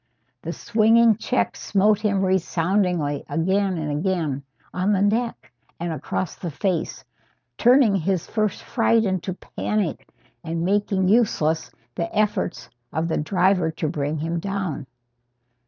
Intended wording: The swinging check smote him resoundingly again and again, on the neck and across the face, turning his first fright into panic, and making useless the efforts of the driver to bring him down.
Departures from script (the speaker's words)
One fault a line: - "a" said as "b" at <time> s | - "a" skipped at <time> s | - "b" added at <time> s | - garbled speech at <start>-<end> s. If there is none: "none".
none